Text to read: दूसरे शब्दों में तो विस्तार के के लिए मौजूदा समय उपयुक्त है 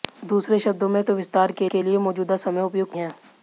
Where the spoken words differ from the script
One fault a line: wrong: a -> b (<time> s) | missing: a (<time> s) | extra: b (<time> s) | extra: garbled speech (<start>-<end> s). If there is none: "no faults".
no faults